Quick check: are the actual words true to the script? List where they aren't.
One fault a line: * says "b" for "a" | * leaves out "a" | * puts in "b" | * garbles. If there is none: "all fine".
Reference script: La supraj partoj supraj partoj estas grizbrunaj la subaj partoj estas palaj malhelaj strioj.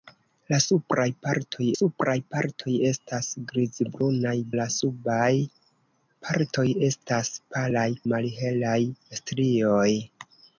all fine